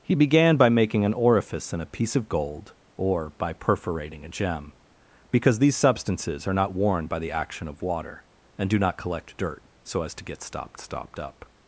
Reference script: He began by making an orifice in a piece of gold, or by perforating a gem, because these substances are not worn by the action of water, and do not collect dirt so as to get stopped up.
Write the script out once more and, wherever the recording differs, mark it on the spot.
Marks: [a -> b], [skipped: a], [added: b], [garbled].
He began by making an orifice in a piece of gold, or by perforating a gem, because these substances are not worn by the action of water, and do not collect dirt so as to get stopped [added: stopped] up.